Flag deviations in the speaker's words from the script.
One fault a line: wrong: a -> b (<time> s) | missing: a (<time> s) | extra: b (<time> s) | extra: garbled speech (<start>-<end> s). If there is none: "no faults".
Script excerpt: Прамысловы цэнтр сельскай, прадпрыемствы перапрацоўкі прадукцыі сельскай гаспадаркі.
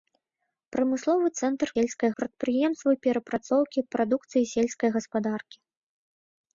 no faults